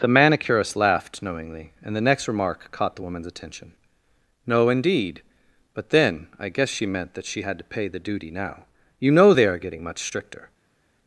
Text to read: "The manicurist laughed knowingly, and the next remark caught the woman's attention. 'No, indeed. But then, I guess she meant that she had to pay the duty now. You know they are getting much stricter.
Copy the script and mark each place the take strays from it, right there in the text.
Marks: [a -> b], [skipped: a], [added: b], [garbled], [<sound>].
"The manicurist laughed knowingly, and the next remark caught the woman's attention. 'No, indeed. But then, I guess she meant that she had to pay the duty now. You know they are getting much stricter.